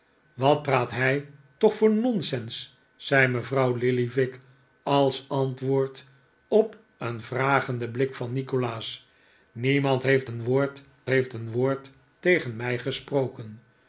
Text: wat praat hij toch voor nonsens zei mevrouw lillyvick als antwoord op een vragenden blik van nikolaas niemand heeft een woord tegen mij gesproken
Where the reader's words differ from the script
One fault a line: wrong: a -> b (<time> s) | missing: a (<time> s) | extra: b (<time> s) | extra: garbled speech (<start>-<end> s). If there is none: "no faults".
extra: heeft een woord (11.1 s)